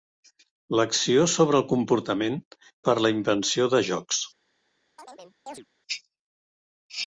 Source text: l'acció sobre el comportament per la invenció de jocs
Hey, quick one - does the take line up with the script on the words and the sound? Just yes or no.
no